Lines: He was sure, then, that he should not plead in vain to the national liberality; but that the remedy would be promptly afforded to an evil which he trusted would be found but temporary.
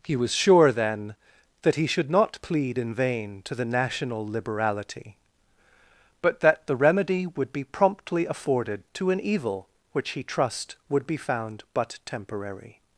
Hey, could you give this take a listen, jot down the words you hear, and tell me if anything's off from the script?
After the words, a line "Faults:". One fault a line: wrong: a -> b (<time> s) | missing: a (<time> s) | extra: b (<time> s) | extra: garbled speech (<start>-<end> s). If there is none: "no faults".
He was sure, then, that he should not plead in vain to the national liberality; but that the remedy would be promptly afforded to an evil which he trust would be found but temporary.
Faults:
wrong: trusted -> trust (10.2 s)